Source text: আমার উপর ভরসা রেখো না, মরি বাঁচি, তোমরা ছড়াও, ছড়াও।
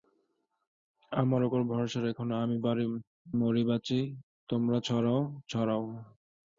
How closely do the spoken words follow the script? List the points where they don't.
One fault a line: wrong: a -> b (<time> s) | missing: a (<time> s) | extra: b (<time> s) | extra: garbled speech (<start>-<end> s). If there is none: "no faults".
no faults